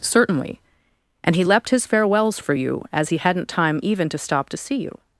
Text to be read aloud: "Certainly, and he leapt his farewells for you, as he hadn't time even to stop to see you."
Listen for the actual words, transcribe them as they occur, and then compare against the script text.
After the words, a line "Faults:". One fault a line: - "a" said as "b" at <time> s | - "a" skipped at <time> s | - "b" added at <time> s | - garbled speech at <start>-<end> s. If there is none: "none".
"Certainly, and he leapt his farewells for you, as he hadn't time even to stop to see you."
Faults:
none